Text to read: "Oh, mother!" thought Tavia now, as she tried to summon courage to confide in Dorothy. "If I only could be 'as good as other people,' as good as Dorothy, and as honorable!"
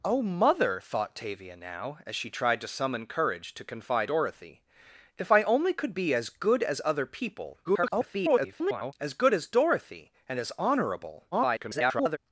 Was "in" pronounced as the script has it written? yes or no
no